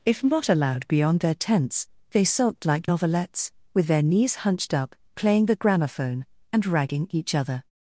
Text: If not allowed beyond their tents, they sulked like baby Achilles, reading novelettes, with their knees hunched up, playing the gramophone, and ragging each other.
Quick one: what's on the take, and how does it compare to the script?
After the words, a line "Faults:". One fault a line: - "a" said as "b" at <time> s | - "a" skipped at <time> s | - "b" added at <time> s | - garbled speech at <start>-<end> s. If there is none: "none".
If not allowed beyond their tents, they sulked like novelettes, with their knees hunched up, playing the gramophone, and ragging each other.
Faults:
- "baby Achilles reading" skipped at 2.9 s